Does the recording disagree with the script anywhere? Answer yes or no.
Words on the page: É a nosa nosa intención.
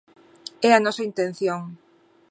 yes